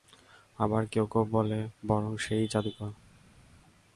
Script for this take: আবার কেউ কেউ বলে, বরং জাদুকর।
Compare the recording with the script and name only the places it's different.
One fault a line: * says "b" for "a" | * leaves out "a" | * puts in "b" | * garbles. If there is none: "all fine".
* puts in "সে-ই"